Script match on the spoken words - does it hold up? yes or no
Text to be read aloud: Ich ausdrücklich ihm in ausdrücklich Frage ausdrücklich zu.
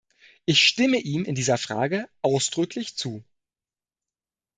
no